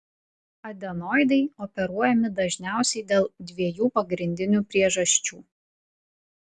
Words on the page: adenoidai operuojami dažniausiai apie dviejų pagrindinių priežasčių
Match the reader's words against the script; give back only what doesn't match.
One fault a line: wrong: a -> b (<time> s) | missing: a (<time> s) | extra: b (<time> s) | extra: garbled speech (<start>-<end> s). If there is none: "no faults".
wrong: apie -> dėl (3.1 s)